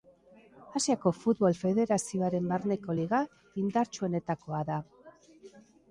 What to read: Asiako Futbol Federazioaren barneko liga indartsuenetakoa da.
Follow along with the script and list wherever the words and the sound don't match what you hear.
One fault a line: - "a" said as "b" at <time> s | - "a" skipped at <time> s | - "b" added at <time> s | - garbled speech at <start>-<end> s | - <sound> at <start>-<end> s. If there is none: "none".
none